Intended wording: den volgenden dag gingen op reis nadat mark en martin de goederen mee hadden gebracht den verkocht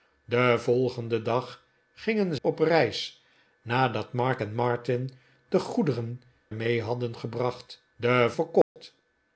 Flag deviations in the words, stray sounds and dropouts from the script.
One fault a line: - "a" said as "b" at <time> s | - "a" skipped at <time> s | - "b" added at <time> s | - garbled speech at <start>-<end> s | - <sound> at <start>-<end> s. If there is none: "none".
- dropout at 8.6-8.8 s